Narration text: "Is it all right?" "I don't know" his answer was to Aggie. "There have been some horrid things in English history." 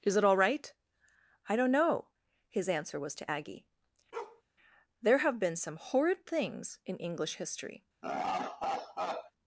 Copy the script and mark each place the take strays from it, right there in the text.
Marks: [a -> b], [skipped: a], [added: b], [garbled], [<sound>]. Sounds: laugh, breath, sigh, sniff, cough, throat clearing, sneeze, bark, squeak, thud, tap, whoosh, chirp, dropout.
"Is it all right?" "I don't know" his answer was to Aggie. [bark] "There have been some horrid things in English history." [laugh]